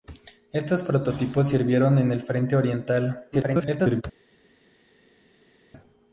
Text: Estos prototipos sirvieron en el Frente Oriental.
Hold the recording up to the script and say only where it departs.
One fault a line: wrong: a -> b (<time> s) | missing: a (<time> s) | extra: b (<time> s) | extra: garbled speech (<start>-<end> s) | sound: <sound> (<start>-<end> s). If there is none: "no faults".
extra: garbled speech (3.3-4.0 s)